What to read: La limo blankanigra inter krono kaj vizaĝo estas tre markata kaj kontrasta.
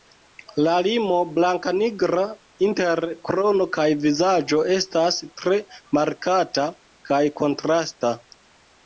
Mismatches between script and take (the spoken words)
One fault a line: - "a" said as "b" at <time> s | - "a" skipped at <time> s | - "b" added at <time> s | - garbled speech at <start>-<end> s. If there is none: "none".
none